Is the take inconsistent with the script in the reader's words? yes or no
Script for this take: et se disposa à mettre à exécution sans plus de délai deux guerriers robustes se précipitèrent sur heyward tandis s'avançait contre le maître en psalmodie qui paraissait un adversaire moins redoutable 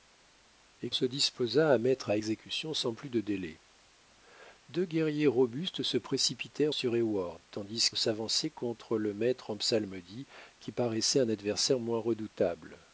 no